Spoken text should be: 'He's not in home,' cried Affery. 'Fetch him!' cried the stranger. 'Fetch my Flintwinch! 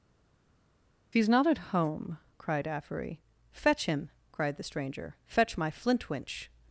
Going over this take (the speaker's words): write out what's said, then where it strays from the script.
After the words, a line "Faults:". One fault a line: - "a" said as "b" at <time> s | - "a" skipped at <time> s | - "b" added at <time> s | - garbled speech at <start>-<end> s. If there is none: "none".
'He's not at home,' cried Affery. 'Fetch him!' cried the stranger. 'Fetch my Flintwinch!
Faults:
- "in" said as "at" at 1.5 s